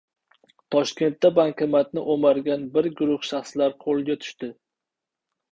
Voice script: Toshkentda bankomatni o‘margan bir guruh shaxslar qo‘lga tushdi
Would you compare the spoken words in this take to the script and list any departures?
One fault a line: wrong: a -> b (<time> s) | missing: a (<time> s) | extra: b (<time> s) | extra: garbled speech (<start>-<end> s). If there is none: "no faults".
no faults